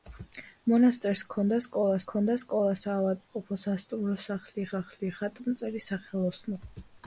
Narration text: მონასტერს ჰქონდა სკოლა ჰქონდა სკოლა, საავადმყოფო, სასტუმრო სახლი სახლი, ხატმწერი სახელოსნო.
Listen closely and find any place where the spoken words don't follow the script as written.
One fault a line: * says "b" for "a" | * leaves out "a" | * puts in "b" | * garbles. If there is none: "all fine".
all fine